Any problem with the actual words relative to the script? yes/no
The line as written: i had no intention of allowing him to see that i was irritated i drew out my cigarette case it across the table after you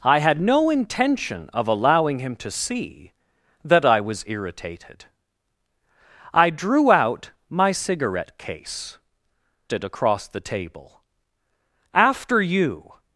no